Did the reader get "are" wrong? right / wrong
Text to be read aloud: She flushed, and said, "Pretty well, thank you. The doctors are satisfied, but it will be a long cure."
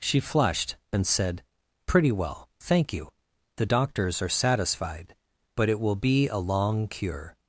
right